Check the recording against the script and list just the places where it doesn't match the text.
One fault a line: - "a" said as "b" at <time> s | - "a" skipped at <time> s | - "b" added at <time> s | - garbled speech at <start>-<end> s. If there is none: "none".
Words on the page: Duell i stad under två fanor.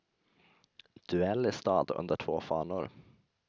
none